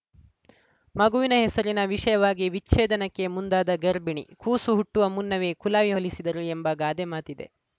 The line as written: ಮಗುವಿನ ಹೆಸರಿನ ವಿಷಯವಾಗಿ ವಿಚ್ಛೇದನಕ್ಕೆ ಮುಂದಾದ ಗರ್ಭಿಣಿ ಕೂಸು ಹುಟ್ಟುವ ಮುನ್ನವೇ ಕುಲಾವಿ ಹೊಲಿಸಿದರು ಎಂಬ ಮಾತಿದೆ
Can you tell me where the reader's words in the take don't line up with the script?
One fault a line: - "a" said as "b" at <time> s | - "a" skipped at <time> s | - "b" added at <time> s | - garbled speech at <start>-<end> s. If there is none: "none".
- "ಗಾದೆ" added at 6.8 s